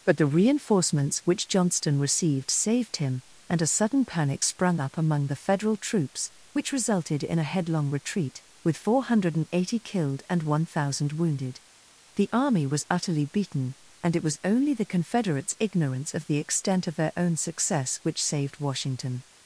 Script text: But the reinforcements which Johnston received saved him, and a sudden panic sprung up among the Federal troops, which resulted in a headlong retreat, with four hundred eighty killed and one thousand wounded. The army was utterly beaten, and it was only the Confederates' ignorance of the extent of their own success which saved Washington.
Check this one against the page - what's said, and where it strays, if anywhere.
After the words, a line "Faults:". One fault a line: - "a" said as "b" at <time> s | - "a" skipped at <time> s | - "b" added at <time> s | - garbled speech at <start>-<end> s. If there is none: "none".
But the reinforcements which Johnston received saved him, and a sudden panic sprung up among the Federal troops, which resulted in a headlong retreat, with four hundred eighty killed and one thousand wounded. The army was utterly beaten, and it was only the Confederates' ignorance of the extent of their own success which saved Washington.
Faults:
none